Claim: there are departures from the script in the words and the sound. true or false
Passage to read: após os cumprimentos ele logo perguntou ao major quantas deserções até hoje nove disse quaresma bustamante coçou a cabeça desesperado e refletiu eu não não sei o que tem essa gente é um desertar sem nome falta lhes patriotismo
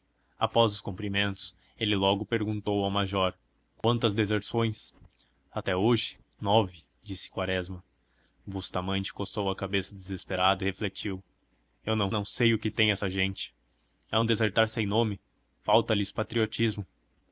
true